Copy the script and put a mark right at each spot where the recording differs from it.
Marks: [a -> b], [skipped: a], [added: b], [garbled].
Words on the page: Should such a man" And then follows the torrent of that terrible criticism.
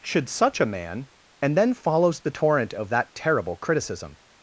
Should such a man" And then follows the torrent of that terrible criticism.